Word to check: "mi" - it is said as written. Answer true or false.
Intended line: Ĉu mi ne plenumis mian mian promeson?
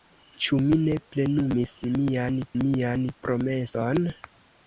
true